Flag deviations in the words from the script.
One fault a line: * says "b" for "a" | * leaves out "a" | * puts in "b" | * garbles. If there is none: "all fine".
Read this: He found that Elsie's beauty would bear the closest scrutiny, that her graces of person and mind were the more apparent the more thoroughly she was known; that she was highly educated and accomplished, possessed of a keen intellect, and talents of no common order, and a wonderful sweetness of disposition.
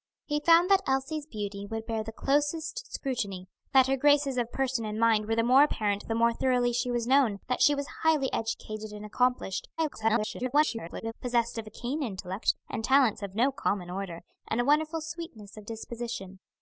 * garbles